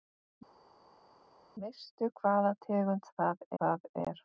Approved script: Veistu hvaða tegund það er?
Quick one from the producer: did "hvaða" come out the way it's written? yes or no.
yes